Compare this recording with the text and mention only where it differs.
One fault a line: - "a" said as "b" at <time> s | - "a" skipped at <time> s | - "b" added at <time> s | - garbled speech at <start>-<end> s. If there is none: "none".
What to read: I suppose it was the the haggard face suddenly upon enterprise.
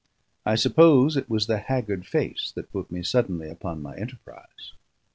- "the" skipped at 1.6 s
- "that put me" added at 2.5 s
- "my" added at 3.8 s